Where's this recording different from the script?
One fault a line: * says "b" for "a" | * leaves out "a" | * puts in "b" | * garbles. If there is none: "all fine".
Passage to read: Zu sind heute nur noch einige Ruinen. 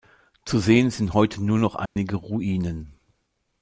* puts in "sehen"